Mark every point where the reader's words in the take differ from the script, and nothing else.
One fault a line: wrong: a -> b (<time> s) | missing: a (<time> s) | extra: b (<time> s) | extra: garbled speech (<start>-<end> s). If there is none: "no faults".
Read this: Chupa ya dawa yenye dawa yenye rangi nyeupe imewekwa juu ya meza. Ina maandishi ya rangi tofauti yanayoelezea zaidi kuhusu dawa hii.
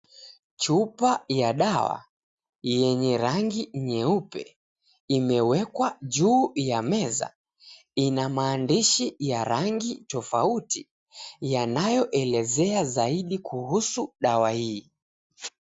missing: dawa yenye (3.2 s)